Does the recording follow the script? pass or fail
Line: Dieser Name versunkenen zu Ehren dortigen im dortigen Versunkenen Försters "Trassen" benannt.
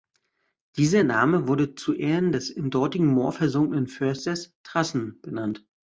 fail